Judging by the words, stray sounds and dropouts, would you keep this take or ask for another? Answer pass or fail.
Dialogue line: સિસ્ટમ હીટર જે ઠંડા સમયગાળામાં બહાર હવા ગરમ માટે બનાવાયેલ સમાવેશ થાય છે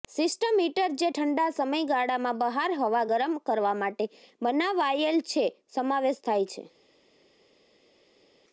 fail